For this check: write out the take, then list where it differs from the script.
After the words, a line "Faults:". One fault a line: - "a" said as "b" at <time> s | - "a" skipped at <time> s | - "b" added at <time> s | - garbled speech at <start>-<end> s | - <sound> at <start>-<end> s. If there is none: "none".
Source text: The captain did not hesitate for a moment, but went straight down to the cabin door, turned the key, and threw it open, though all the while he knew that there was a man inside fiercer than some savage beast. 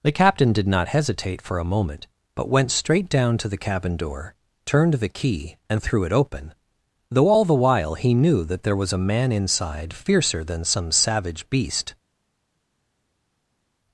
The captain did not hesitate for a moment, but went straight down to the cabin door, turned the key, and threw it open, though all the while he knew that there was a man inside fiercer than some savage beast.
Faults:
none